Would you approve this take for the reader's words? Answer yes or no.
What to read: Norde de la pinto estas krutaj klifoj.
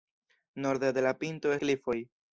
no